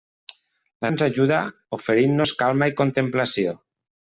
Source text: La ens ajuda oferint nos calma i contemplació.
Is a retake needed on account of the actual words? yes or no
no